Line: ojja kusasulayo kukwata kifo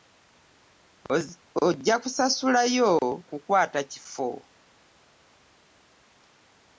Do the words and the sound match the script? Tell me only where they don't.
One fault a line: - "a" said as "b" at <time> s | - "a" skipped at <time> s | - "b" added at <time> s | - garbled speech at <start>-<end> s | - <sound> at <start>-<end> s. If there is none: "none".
none